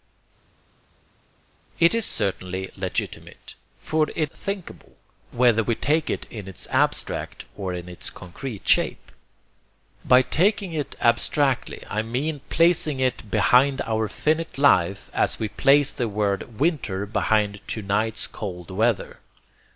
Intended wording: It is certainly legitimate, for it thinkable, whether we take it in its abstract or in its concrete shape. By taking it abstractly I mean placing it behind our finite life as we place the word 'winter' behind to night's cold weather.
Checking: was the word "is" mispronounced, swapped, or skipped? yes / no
no